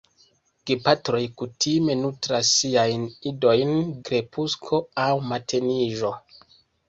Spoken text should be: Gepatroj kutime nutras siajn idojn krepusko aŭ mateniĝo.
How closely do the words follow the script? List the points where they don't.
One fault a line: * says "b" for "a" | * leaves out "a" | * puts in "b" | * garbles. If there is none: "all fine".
all fine